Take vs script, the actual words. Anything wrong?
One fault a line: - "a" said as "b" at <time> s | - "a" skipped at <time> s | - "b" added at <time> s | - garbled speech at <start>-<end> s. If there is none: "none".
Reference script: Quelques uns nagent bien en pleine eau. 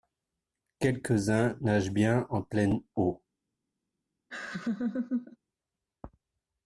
none